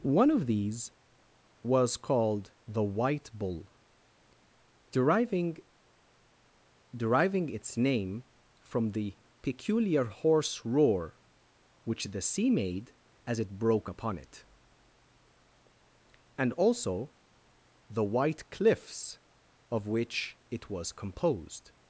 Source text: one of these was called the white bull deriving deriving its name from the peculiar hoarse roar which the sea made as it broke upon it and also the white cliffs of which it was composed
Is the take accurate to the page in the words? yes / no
yes